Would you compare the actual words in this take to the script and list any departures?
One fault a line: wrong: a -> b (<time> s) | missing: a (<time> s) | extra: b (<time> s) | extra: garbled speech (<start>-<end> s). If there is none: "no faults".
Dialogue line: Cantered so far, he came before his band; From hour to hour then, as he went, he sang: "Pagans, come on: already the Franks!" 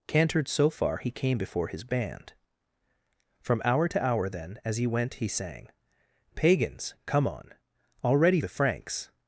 no faults